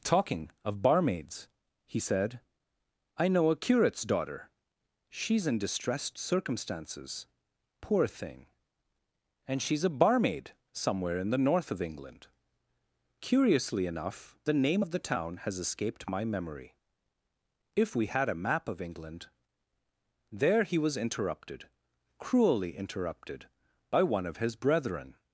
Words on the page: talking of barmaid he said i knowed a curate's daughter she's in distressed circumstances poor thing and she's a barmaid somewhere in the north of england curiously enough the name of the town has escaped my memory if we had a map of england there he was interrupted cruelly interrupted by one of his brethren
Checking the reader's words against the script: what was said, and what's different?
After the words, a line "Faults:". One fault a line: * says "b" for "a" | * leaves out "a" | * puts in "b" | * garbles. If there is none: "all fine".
talking of barmaids he said i know a curate's daughter she's in distressed circumstances poor thing and she's a barmaid somewhere in the north of england curiously enough the name of the town has escaped my memory if we had a map of england there he was interrupted cruelly interrupted by one of his brethren
Faults:
* says "barmaids" for "barmaid"
* says "know" for "knowed"